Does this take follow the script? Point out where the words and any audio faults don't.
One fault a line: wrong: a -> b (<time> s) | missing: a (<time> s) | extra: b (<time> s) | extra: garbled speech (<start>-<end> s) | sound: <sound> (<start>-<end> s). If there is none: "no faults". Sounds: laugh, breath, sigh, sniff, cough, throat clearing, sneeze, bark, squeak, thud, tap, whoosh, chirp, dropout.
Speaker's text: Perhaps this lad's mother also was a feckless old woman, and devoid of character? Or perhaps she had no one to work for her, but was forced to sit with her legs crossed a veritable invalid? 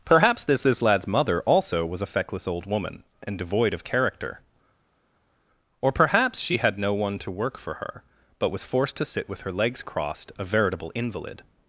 extra: this (0.6 s)